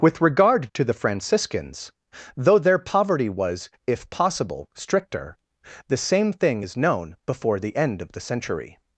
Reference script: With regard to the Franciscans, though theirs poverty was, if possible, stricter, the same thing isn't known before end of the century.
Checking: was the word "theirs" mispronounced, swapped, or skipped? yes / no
yes